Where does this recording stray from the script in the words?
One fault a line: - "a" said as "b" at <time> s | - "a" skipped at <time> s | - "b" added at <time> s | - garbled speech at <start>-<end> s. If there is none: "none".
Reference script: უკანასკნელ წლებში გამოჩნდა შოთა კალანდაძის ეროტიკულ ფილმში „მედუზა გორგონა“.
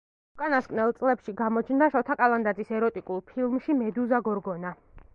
none